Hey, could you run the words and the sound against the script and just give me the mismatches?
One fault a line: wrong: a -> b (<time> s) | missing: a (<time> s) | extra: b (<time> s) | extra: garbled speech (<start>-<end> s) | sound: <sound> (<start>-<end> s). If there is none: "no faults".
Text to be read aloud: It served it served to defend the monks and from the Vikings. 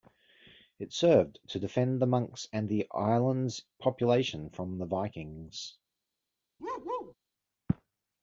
missing: it served (1.4 s)
extra: the island's population (2.7 s)
sound: bark (6.6-7.1 s)